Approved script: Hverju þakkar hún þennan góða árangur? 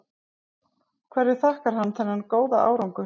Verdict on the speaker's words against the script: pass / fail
fail